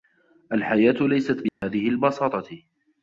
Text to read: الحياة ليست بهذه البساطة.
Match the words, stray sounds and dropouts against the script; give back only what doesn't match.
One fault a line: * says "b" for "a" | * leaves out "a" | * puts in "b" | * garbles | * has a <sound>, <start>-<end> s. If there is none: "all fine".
* has a dropout, 1.5-1.6 s